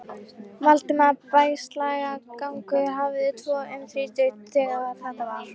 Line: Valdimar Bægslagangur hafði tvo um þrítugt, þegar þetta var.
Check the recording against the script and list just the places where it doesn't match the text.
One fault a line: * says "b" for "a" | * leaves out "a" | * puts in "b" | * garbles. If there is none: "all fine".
all fine